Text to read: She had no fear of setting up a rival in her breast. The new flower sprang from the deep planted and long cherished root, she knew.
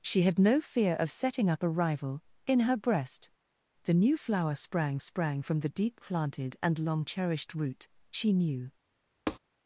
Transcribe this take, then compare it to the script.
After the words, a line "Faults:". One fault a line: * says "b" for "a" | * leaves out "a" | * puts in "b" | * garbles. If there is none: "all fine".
She had no fear of setting up a rival in her breast. The new flower sprang sprang from the deep planted and long cherished root, she knew.
Faults:
* puts in "sprang"